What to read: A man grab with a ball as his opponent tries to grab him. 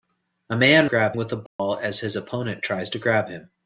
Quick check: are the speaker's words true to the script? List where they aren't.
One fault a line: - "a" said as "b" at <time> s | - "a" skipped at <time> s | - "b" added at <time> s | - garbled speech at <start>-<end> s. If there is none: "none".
none